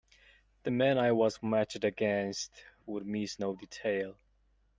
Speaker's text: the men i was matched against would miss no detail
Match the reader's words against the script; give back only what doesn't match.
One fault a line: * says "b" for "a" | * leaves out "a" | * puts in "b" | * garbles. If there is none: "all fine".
all fine